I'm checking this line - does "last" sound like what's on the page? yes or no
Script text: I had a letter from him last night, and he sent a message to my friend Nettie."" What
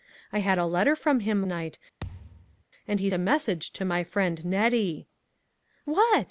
no